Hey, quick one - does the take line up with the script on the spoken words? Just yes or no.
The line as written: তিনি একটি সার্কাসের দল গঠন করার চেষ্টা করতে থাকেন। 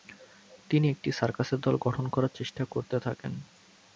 yes